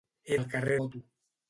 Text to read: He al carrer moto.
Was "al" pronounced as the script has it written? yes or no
yes